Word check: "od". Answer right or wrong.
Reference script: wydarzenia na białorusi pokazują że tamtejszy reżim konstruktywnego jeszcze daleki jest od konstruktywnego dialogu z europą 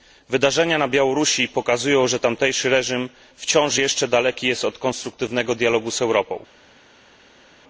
right